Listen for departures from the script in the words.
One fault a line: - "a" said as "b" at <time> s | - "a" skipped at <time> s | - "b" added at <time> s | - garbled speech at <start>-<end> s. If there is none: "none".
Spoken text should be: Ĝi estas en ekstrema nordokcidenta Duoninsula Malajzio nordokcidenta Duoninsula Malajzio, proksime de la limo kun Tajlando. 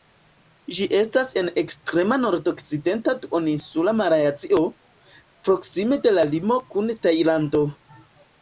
- "nordokcidenta Duoninsula Malajzio" skipped at 4.6 s